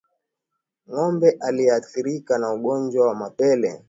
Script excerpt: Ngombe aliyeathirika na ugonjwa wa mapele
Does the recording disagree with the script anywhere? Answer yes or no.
no